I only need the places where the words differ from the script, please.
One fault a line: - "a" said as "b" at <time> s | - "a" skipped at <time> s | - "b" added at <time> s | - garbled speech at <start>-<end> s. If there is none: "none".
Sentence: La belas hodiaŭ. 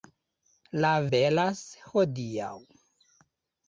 none